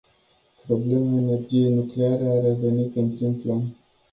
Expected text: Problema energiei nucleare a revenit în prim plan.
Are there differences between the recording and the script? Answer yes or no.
no